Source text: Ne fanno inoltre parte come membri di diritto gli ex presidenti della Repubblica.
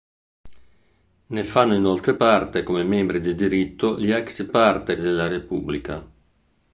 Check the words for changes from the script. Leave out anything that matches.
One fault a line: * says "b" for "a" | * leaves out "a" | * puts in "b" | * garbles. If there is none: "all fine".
* says "parte" for "presidenti"